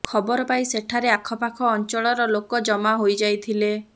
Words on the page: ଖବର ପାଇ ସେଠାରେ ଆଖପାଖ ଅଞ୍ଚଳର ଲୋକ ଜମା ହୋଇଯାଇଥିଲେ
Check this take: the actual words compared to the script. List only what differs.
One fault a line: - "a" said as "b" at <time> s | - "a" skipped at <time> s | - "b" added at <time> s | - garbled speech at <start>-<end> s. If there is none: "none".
none